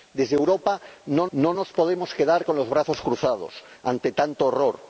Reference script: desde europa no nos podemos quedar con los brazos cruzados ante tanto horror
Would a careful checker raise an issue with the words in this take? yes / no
yes